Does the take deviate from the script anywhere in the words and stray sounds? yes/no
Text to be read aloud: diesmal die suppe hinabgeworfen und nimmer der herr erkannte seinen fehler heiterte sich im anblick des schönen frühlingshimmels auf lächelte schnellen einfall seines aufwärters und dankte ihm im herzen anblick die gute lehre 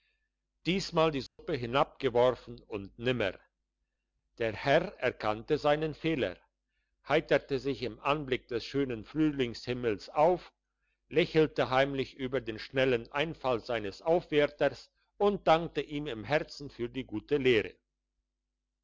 yes